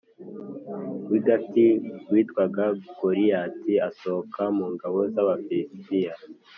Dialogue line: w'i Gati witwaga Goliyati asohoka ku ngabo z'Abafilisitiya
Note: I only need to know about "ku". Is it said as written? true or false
false